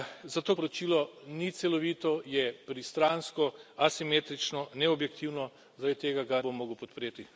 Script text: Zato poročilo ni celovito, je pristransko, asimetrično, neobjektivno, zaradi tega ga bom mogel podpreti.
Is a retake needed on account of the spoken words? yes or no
no